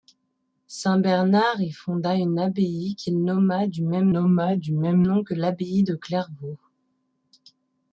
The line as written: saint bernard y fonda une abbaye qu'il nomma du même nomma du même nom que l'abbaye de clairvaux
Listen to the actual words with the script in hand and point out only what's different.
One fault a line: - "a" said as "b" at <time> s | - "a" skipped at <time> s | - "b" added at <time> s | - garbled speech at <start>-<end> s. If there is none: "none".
none